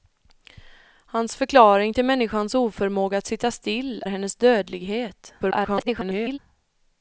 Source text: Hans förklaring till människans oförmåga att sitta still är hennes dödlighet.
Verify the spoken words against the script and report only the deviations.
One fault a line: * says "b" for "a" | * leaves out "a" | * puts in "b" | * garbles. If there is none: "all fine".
* leaves out "är"
* garbles